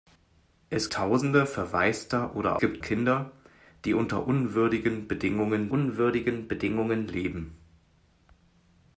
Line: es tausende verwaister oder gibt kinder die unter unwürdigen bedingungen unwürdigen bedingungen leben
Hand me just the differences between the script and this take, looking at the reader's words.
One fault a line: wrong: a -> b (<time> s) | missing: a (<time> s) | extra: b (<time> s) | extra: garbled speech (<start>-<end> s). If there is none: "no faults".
no faults